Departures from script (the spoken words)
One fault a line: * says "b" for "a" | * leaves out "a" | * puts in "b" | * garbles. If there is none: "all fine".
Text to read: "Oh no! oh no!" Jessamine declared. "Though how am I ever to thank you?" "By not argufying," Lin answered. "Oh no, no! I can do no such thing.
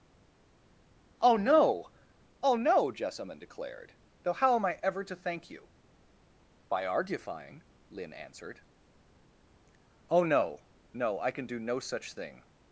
* leaves out "not"